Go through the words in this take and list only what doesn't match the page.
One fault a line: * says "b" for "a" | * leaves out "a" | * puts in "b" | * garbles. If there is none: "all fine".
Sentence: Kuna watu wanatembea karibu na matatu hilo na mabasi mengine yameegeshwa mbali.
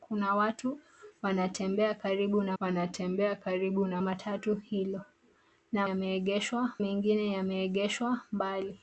* puts in "wanatembea karibu na"
* says "yameegeshwa" for "mabasi"